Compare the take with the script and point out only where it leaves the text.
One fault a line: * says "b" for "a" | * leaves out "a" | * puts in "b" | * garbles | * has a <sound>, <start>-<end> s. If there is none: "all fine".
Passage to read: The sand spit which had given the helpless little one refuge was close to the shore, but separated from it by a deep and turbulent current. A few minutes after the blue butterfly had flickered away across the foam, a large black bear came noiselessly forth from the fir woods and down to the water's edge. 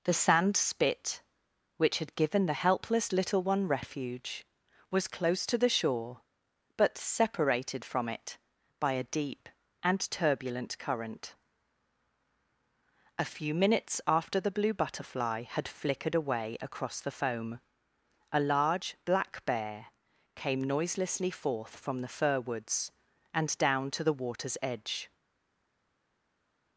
all fine